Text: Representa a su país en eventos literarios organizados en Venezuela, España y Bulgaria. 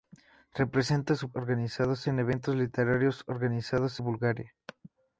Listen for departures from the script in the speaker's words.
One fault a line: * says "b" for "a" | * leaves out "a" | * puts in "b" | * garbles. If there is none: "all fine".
* says "organizados" for "país"
* leaves out "en Venezuela España"